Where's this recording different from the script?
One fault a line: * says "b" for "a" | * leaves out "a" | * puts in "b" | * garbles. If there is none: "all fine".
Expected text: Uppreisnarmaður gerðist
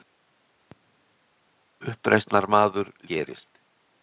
all fine